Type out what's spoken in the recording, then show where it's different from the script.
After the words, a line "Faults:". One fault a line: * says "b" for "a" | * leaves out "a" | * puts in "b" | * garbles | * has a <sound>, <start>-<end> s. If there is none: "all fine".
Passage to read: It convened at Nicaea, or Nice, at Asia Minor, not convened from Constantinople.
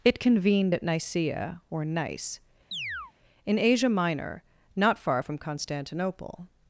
It convened at Nicaea, or Nice, in Asia Minor, not far from Constantinople.
Faults:
* has a chirp, 2.7-3.1 s
* says "in" for "at"
* says "far" for "convened"